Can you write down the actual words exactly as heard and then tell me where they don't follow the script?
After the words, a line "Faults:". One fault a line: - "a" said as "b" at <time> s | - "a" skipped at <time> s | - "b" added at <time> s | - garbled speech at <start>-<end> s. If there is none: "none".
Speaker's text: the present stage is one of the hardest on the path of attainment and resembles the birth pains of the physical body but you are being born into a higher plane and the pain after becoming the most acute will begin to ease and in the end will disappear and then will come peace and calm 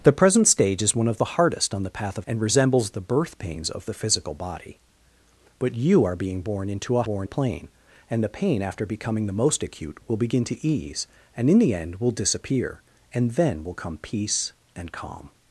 the present stage is one of the hardest on the path of and resembles the birth pains of the physical body but you are being born into a born plane and the pain after becoming the most acute will begin to ease and in the end will disappear and then will come peace and calm
Faults:
- "attainment" skipped at 2.2 s
- "higher" said as "born" at 7.0 s